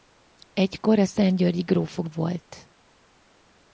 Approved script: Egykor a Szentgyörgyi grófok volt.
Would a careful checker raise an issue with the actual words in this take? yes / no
no